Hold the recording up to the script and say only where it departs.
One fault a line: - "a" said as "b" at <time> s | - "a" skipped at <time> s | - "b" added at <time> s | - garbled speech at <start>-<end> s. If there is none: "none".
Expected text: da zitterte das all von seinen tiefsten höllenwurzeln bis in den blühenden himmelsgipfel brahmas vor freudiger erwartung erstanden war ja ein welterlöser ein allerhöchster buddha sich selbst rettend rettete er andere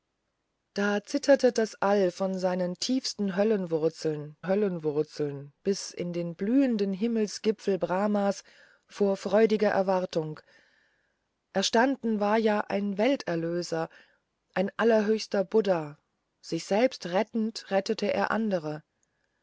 - "höllenwurzeln" added at 4.5 s